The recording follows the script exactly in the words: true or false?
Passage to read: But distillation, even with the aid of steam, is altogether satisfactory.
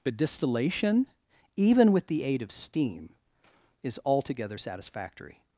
true